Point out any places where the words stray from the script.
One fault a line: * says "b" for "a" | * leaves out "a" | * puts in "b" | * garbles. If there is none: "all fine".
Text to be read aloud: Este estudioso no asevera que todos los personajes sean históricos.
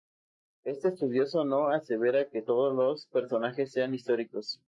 all fine